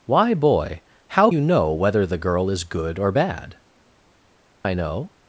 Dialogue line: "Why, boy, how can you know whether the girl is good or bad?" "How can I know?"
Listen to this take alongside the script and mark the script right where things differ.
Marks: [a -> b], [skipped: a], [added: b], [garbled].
"Why, boy, how [skipped: can] you know whether the girl is good or bad?" [skipped: "How can] I know?"